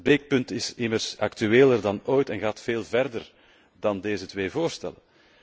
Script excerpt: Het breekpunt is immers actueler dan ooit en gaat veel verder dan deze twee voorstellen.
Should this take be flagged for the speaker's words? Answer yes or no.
no